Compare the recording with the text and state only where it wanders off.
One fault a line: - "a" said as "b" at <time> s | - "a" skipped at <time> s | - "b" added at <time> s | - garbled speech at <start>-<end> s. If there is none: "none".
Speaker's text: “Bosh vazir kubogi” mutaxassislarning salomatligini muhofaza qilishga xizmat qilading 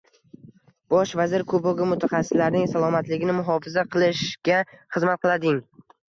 none